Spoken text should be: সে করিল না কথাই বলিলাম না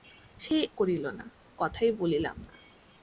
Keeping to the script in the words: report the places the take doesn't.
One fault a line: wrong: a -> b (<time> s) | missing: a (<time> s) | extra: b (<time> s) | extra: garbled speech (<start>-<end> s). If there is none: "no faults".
no faults